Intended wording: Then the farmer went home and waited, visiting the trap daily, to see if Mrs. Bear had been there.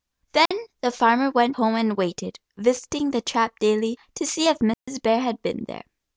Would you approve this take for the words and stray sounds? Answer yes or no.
no